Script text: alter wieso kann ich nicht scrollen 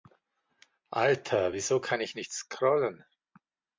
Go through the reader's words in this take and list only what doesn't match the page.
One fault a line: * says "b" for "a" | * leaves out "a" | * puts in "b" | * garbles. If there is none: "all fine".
all fine